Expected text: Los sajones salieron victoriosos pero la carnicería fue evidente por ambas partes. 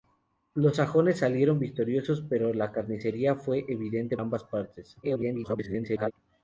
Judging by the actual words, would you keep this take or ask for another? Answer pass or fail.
fail